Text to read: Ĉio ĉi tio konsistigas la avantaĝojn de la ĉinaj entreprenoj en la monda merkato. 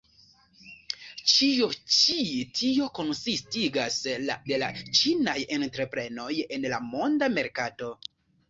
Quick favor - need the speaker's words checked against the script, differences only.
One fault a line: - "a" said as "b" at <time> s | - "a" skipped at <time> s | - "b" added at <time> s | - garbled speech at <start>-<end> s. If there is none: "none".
- "avantaĝojn" skipped at 4.4 s